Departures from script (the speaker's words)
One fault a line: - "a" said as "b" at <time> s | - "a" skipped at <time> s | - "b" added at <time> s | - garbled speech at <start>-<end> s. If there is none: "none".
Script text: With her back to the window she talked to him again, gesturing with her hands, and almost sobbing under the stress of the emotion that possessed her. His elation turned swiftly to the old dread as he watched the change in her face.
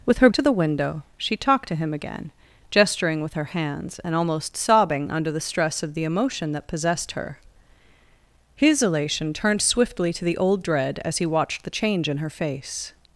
- "back" skipped at 0.3 s